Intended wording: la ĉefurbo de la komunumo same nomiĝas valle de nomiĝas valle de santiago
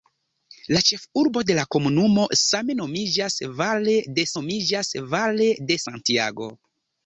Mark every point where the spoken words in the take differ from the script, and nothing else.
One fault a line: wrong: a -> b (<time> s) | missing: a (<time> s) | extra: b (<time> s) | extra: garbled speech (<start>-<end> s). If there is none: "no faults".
no faults